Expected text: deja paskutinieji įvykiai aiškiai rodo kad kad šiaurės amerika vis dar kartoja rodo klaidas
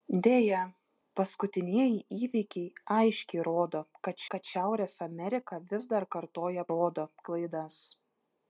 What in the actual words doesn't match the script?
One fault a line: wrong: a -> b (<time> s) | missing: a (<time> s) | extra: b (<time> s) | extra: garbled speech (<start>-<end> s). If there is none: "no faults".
no faults